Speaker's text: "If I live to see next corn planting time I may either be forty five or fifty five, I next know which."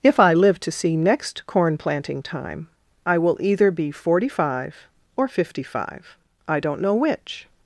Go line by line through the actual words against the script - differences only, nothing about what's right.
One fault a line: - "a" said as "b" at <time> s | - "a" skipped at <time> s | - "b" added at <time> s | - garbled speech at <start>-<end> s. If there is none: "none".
- "may" said as "will" at 3.2 s
- "next" said as "don't" at 6.6 s